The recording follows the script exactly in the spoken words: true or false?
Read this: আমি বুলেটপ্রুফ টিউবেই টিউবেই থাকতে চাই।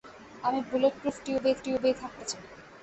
true